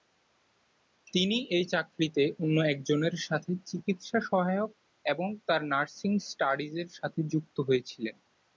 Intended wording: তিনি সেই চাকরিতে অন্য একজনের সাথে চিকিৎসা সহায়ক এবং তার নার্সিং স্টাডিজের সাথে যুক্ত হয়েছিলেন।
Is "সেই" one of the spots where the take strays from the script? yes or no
yes